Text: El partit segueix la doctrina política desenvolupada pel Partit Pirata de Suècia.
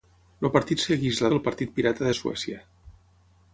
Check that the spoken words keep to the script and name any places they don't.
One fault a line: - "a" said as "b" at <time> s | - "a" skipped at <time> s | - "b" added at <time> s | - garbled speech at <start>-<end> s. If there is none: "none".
- "doctrina política desenvolupada" skipped at 1.3 s